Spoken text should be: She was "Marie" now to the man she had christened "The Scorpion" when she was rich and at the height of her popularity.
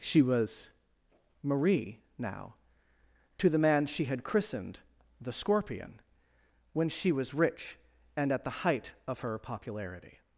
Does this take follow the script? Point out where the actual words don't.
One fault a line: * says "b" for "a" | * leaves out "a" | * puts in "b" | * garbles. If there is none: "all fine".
all fine